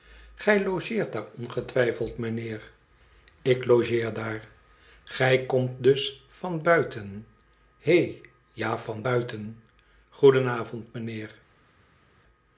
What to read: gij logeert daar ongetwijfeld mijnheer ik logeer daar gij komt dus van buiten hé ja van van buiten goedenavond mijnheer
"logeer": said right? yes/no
yes